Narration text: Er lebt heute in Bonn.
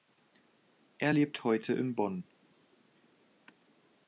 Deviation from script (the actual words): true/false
false